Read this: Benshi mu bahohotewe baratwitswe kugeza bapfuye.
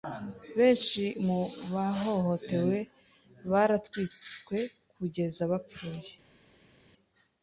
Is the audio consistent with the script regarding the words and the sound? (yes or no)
yes